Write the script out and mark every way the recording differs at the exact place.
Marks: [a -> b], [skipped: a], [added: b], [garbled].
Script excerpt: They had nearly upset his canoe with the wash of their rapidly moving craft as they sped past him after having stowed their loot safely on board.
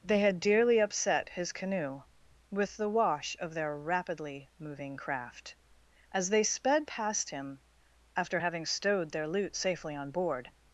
They had [nearly -> dearly] upset his canoe with the wash of their rapidly moving craft as they sped past him after having stowed their loot safely on board.